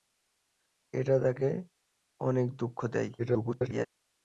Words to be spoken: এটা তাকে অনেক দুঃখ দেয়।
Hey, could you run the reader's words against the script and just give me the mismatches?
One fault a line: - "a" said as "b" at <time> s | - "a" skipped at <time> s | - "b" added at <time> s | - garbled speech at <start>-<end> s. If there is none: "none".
- garbled speech at 3.2-3.9 s